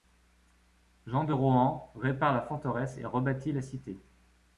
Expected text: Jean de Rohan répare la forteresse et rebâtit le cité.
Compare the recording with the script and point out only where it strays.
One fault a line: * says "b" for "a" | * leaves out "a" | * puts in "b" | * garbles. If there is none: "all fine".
* says "la" for "le"